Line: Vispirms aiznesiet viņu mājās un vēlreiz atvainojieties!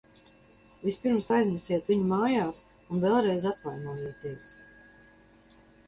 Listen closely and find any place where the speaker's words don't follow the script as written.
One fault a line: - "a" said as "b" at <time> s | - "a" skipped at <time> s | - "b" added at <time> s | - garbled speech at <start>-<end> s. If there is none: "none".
none